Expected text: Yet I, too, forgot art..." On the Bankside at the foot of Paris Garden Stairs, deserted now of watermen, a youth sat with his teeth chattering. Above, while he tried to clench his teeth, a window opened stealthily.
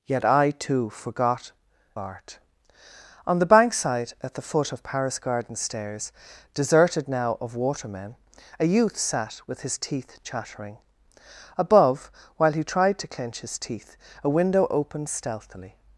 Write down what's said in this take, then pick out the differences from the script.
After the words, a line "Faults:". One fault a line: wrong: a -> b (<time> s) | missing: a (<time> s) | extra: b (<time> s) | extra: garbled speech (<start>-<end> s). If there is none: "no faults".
Yet I, too, forgot art..." On the Bankside at the foot of Paris Garden Stairs, deserted now of watermen, a youth sat with his teeth chattering. Above, while he tried to clench his teeth, a window opened stealthily.
Faults:
no faults